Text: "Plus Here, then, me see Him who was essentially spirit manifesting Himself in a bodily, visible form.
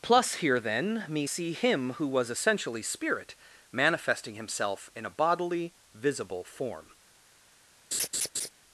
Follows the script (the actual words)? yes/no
yes